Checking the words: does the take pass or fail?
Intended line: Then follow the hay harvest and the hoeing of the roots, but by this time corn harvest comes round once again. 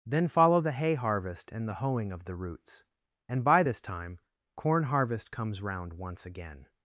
fail